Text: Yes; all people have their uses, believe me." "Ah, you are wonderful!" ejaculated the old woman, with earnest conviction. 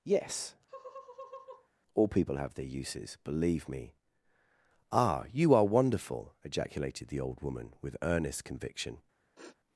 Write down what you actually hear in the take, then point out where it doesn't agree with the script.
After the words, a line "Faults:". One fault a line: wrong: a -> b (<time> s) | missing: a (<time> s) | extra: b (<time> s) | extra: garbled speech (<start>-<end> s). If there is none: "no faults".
Yes; all people have their uses, believe me." "Ah, you are wonderful!" ejaculated the old woman, with earnest conviction.
Faults:
no faults